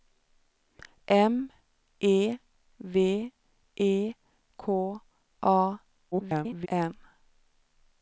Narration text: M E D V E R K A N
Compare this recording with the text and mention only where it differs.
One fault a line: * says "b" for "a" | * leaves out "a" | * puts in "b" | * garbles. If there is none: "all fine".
* leaves out "D"
* leaves out "R"
* garbles